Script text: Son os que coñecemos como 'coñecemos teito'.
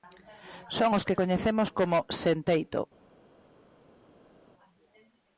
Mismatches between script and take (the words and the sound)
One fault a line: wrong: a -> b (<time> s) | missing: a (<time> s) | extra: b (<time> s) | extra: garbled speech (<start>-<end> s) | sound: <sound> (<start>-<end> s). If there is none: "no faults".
wrong: coñecemos -> sen (2.2 s)